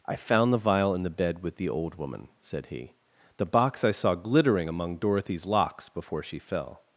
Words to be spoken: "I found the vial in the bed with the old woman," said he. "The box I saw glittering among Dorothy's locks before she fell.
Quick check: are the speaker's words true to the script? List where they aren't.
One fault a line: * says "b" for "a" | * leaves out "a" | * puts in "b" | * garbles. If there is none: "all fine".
all fine